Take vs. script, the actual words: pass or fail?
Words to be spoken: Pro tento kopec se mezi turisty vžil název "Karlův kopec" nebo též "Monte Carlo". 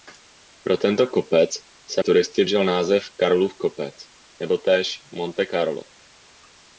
fail